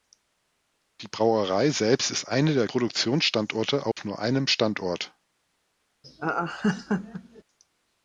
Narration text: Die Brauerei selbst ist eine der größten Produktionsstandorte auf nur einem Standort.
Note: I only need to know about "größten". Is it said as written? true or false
false